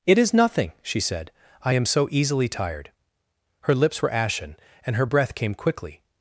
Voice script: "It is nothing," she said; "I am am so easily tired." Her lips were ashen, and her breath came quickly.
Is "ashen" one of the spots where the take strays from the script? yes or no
no